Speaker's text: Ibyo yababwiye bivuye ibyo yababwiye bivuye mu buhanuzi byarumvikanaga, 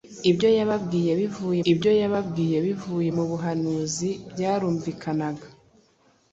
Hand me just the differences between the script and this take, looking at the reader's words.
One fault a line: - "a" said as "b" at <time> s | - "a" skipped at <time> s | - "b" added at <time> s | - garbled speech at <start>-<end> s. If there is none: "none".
none